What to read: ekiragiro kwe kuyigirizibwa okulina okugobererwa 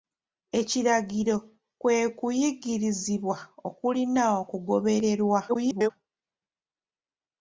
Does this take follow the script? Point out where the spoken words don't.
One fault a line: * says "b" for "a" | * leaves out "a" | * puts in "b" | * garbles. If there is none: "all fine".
* garbles